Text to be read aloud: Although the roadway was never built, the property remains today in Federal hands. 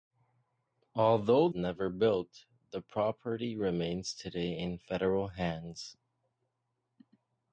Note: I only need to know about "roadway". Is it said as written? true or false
false